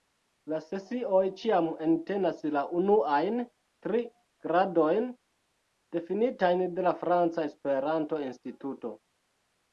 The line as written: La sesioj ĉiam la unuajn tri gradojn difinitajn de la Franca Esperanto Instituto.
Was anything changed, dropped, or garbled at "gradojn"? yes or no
no